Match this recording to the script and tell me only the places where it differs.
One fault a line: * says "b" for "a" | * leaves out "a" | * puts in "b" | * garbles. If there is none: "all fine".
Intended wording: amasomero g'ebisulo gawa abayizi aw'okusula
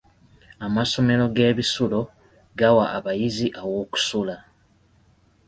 all fine